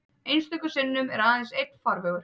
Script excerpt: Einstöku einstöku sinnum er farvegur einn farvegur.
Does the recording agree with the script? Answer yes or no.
no